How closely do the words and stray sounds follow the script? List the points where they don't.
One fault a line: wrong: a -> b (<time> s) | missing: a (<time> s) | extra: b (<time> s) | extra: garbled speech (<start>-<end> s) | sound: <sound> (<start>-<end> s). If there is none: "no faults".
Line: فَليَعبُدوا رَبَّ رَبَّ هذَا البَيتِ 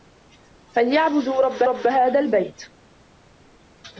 no faults